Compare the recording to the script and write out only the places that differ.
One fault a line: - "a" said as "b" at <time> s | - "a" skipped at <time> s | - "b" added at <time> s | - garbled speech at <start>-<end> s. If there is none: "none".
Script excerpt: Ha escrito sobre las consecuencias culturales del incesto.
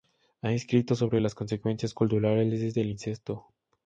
none